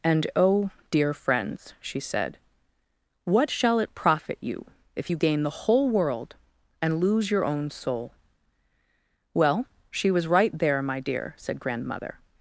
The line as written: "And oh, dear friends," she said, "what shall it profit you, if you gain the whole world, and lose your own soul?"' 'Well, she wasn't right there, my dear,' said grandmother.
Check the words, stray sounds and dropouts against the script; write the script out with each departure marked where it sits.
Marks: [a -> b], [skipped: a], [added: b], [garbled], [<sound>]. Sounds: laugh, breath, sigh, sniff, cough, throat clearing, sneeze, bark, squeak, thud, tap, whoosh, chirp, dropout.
"And oh, dear friends," she said, "what shall it profit you, if you gain the whole world, and lose your own soul?"' 'Well, she [wasn't -> was] right there, my dear,' said grandmother.